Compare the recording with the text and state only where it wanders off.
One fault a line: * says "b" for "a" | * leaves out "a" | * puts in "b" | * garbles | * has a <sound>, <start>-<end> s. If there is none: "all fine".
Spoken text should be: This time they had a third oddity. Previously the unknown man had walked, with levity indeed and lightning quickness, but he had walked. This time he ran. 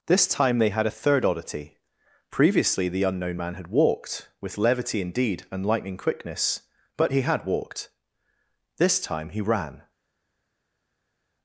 all fine